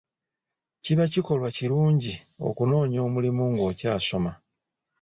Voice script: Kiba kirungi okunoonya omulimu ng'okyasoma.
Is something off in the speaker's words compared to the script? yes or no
yes